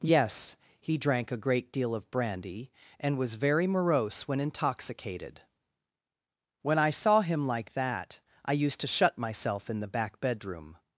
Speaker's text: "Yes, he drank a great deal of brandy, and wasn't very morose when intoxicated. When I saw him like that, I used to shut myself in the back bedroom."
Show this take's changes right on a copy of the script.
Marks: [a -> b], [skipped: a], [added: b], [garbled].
"Yes, he drank a great deal of brandy, and [wasn't -> was] very morose when intoxicated. When I saw him like that, I used to shut myself in the back bedroom."